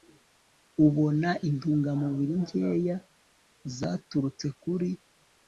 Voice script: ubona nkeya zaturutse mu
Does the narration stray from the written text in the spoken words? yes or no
yes